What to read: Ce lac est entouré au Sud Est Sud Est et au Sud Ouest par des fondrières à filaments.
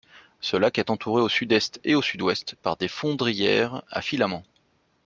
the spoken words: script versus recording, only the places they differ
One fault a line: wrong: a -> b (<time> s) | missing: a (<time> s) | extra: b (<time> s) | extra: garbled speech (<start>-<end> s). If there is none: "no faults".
missing: Sud Est (1.8 s)